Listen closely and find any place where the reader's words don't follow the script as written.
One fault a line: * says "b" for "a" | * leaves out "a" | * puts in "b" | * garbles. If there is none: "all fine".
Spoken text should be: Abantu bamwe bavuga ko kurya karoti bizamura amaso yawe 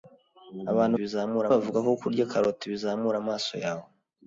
* says "bizamura" for "bamwe"